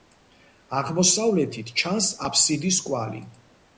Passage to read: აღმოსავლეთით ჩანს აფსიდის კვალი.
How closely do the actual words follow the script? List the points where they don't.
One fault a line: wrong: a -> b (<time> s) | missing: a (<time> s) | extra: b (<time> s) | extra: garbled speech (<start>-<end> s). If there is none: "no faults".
no faults